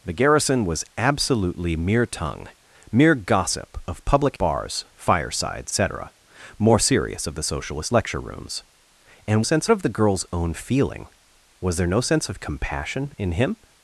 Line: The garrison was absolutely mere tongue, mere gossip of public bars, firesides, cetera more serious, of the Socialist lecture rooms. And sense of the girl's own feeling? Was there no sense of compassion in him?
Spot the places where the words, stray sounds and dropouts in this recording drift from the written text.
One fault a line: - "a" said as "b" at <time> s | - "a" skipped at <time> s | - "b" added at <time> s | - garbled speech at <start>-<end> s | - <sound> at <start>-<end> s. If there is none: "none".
none